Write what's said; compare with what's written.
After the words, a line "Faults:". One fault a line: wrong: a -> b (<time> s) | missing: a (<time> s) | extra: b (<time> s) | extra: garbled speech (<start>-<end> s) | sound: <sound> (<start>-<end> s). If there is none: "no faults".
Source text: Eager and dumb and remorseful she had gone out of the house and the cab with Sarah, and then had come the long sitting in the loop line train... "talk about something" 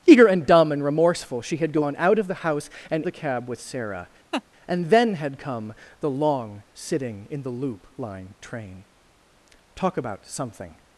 Eager and dumb and remorseful she had gone out of the house and the cab with Sarah, and then had come the long sitting in the loop line train... "talk about something"
Faults:
sound: laugh (4.3-4.4 s)